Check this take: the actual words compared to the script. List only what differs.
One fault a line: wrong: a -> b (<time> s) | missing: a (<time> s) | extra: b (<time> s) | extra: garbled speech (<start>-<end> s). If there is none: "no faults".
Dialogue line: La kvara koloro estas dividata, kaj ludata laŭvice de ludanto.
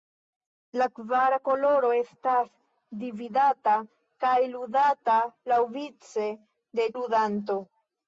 no faults